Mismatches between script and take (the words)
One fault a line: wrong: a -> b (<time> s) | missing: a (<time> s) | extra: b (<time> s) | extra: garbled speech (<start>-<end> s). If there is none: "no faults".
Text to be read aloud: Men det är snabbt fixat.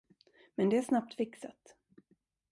no faults